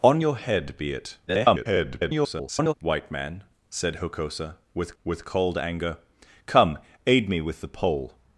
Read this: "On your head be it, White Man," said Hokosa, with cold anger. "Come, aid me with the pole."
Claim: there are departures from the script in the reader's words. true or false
true